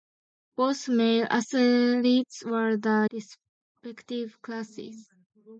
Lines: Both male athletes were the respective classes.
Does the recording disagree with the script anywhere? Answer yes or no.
no